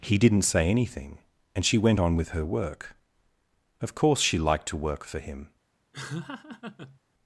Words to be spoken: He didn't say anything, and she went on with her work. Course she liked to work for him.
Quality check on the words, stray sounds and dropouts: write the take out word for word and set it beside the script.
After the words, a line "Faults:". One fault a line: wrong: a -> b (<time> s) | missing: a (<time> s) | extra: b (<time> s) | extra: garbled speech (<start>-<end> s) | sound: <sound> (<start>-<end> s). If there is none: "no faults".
He didn't say anything, and she went on with her work. Of course she liked to work for him.
Faults:
extra: Of (3.8 s)
sound: laugh (5.9-7.0 s)